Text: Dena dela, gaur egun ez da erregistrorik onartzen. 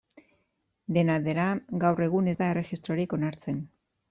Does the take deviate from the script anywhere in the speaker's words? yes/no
no